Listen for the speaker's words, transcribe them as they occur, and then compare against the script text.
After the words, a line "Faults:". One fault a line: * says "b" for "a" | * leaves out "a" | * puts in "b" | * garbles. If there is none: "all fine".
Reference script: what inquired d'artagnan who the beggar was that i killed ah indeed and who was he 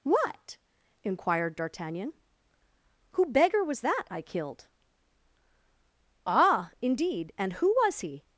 what inquired d'artagnan who beggar was that i killed ah indeed and who was he
Faults:
* leaves out "the"